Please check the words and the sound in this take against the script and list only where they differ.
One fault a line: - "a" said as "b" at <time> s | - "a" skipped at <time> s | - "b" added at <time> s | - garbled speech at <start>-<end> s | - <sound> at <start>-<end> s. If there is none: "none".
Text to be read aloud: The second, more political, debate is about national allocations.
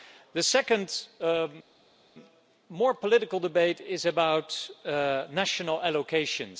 none